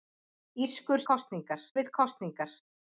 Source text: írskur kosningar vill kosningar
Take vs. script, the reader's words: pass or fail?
pass